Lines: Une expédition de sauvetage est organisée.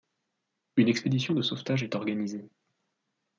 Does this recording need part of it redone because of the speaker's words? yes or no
no